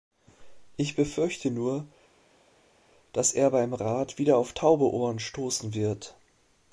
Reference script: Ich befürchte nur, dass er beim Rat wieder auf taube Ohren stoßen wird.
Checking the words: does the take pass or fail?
pass